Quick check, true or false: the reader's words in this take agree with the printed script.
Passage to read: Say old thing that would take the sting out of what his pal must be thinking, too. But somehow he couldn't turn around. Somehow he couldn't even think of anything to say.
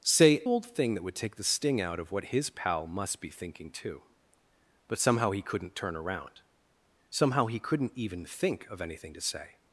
true